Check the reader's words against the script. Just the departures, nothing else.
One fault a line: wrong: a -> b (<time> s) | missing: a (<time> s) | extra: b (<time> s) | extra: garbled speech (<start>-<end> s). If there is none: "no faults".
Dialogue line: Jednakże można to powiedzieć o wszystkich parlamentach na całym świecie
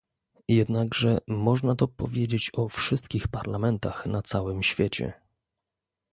no faults